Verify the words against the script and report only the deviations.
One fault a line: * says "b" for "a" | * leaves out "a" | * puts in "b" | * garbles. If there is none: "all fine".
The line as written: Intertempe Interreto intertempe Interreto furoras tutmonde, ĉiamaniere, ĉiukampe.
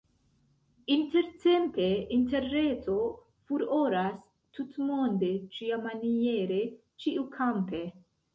* leaves out "intertempe Interreto"